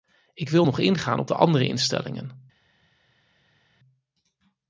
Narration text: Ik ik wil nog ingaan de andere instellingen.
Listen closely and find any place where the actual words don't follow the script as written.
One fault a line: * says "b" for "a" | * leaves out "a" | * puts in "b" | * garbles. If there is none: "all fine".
* leaves out "ik"
* puts in "op"